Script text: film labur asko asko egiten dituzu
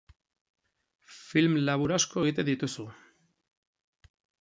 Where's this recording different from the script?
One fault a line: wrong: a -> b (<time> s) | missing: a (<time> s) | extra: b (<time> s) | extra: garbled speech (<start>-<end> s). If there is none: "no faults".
missing: asko (2.2 s)